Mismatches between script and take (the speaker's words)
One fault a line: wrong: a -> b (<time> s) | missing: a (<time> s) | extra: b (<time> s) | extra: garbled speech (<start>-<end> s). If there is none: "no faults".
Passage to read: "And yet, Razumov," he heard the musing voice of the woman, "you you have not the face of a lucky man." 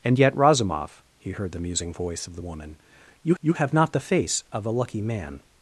no faults